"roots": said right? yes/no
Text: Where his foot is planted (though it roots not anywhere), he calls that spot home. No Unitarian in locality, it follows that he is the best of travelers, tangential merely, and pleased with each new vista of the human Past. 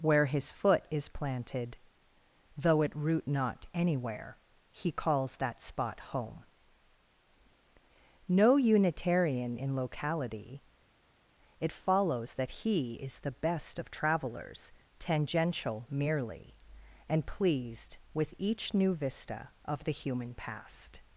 no